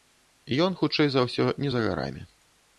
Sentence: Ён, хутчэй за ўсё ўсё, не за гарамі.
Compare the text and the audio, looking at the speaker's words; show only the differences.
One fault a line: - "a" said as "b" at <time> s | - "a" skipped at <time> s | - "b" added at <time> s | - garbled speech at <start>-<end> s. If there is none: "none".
- "ўсё" skipped at 1.4 s